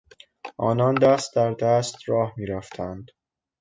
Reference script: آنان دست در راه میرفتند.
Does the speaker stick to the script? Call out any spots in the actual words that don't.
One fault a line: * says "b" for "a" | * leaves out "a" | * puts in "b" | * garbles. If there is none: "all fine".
* puts in "دست"